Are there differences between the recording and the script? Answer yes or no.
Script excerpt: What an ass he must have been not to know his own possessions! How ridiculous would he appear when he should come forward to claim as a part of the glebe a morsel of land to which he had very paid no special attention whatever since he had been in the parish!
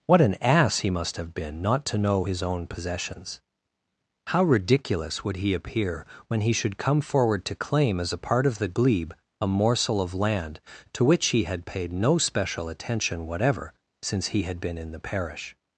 yes